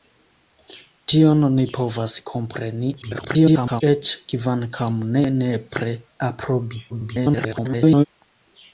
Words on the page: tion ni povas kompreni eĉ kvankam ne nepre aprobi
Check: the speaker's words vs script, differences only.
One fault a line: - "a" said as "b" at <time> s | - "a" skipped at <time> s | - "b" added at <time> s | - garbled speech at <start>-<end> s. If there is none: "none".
- garbled speech at 3.0-3.8 s
- garbled speech at 6.9-8.0 s